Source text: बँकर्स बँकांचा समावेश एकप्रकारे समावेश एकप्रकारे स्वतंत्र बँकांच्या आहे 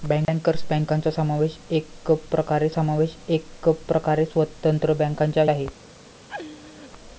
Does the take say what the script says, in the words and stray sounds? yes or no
no